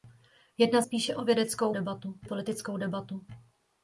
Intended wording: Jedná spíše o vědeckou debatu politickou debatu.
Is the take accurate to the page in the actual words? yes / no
yes